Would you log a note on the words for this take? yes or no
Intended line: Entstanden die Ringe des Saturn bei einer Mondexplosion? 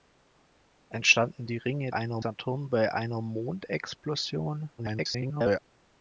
yes